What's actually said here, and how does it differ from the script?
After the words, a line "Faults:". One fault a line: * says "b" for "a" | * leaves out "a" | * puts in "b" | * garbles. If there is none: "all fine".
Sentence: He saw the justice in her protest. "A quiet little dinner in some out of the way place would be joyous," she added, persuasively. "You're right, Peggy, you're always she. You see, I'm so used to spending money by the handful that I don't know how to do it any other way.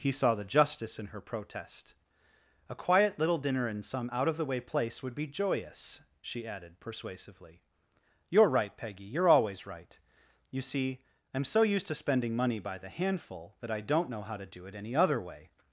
He saw the justice in her protest. "A quiet little dinner in some out of the way place would be joyous," she added, persuasively. "You're right, Peggy, you're always right. You see, I'm so used to spending money by the handful that I don't know how to do it any other way.
Faults:
* says "right" for "she"